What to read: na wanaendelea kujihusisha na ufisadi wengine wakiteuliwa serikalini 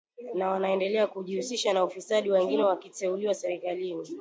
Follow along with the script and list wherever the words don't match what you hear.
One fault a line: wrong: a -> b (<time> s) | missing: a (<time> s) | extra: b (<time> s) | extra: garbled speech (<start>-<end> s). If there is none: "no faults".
no faults